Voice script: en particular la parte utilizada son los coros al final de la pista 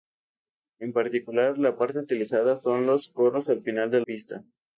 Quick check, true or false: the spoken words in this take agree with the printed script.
false